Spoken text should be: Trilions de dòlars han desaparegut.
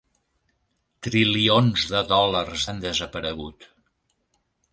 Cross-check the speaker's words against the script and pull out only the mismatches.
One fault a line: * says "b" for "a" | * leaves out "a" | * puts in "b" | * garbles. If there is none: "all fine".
all fine